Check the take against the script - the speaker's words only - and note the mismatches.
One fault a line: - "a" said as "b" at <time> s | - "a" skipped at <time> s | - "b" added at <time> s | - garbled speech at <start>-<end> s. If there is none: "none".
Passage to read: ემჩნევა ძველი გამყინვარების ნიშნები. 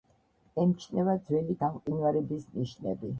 none